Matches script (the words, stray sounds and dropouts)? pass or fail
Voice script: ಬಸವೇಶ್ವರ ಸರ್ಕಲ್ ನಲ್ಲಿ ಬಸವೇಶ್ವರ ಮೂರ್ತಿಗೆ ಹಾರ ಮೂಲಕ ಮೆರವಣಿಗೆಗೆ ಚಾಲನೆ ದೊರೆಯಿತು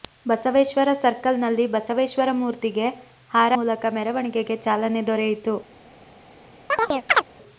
fail